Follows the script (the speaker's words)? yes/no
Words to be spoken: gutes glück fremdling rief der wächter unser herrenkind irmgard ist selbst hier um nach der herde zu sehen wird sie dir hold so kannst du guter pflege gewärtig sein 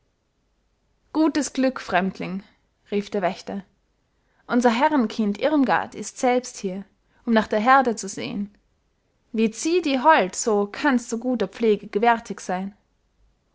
yes